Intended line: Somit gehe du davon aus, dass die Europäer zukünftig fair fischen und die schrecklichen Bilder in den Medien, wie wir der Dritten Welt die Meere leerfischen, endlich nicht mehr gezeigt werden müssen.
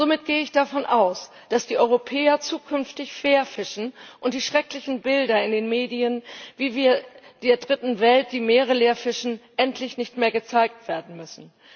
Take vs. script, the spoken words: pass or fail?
fail